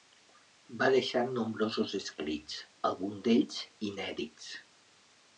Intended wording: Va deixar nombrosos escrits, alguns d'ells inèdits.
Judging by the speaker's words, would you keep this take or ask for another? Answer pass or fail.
pass